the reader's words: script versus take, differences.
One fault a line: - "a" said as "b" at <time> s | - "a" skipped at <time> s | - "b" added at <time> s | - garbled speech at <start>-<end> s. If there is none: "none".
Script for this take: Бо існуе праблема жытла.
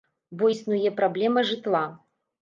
none